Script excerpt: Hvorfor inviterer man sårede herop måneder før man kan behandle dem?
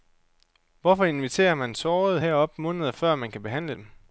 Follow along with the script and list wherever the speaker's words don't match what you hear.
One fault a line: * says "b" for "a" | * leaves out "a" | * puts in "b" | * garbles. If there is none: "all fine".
all fine